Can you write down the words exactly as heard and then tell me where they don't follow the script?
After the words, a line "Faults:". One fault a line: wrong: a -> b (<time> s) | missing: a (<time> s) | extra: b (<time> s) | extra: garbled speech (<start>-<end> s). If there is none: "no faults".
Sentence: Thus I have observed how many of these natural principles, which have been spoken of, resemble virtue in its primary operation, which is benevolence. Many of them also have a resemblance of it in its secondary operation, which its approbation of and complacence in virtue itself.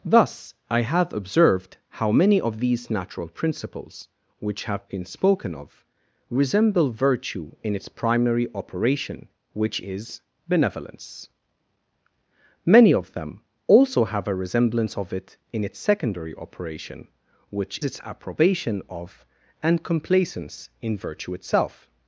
Thus I have observed how many of these natural principles, which have been spoken of, resemble virtue in its primary operation, which is benevolence. Many of them also have a resemblance of it in its secondary operation, which its approbation of and complacence in virtue itself.
Faults:
no faults